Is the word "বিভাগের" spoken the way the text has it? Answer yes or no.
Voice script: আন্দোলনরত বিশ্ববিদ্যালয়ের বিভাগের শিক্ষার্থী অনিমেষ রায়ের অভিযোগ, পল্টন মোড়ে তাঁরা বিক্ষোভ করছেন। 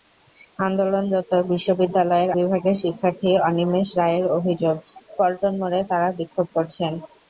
yes